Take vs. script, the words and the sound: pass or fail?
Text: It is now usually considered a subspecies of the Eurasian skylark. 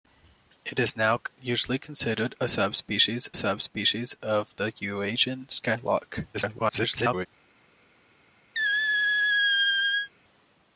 fail